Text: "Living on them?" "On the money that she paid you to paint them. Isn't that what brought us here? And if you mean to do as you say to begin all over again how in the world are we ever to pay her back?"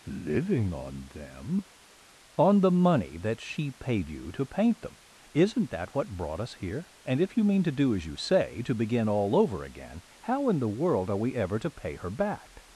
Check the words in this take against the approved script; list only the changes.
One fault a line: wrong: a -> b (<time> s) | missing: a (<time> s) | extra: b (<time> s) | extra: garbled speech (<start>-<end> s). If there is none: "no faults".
no faults